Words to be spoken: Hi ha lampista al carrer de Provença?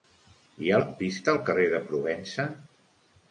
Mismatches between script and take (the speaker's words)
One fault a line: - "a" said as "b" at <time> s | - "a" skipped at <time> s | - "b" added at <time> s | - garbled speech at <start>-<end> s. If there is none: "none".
none